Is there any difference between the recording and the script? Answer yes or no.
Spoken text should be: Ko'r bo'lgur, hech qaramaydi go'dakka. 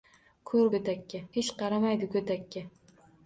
yes